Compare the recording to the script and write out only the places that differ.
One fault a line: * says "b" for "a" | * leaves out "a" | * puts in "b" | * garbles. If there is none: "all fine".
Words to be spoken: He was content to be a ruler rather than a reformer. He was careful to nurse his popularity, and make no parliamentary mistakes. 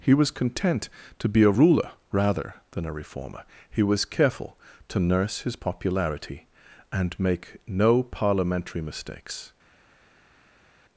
all fine